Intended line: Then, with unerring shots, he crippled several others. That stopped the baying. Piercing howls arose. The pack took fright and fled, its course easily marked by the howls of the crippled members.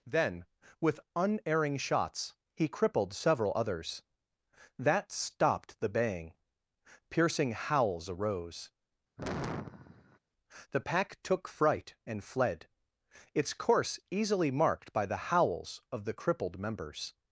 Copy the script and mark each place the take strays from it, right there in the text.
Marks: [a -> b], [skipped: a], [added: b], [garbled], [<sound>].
Then, with unerring shots, he crippled several others. That stopped the baying. Piercing howls arose. [sigh] The pack took fright and fled, its course easily marked by the howls of the crippled members.